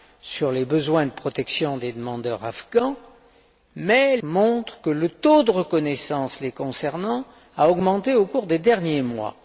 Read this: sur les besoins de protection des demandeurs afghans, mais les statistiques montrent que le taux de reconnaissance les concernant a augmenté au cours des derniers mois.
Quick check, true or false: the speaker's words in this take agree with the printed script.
false